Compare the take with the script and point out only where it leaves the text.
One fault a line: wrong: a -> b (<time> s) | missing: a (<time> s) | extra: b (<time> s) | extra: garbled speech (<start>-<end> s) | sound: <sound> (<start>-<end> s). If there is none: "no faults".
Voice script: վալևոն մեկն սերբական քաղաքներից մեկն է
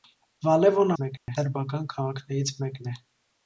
sound: dropout (1.2-1.3 s)